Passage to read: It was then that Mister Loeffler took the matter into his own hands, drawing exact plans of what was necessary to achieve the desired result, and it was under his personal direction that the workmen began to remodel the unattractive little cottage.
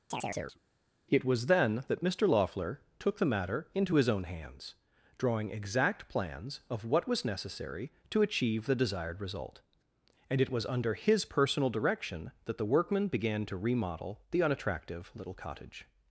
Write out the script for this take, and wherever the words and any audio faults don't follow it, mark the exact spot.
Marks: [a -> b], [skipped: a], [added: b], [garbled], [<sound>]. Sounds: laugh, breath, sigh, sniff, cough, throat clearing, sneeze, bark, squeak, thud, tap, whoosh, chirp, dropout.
[chirp] It was then that Mister Loeffler took the matter into his own hands, drawing exact plans of what was necessary to achieve the desired result, and it was under his personal direction that the workmen began to remodel the unattractive little cottage.